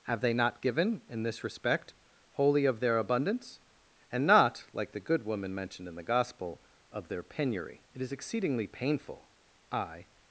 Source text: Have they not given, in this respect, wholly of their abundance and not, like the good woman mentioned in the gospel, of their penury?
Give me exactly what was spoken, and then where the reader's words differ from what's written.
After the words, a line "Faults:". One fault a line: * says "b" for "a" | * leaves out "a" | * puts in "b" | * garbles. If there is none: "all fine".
Have they not given, in this respect, wholly of their abundance and not, like the good woman mentioned in the gospel, of their penury? It is exceedingly painful, I
Faults:
* puts in "It is exceedingly painful I"